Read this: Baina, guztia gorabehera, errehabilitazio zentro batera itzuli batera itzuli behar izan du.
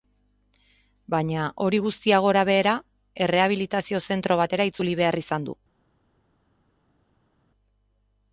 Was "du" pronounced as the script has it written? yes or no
yes